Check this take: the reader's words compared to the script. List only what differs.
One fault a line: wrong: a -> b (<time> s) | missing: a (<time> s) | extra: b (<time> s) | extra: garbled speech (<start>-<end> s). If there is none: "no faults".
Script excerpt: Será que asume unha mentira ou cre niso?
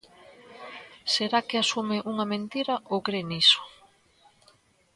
no faults